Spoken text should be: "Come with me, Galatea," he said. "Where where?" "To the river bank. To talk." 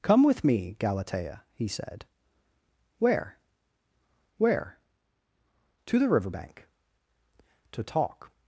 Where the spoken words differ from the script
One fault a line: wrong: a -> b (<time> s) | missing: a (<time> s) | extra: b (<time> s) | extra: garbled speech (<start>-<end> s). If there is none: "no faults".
no faults